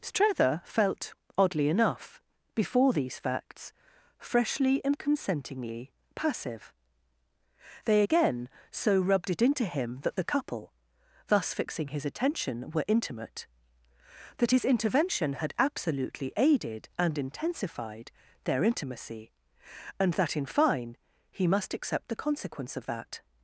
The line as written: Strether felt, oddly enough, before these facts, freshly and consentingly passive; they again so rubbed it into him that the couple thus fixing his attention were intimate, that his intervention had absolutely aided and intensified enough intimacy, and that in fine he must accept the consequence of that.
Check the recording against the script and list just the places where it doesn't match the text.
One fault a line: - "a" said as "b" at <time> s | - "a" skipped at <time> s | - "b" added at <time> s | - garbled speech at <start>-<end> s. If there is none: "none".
- "enough" said as "their" at 18.4 s